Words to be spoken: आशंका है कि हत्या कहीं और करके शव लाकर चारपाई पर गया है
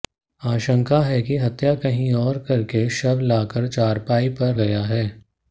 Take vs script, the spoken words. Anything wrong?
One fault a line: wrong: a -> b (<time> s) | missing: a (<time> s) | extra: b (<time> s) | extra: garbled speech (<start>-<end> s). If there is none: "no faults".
no faults